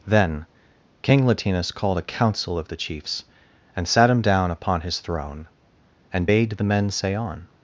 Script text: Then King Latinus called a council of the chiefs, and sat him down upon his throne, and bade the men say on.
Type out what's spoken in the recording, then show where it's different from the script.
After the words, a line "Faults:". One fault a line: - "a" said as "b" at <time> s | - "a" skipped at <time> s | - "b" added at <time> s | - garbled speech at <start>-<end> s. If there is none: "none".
Then King Latinus called a council of the chiefs, and sat him down upon his throne, and bade the men say on.
Faults:
none